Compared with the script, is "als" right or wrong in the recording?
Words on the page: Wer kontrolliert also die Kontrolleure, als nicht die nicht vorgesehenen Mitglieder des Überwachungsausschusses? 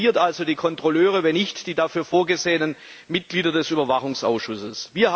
wrong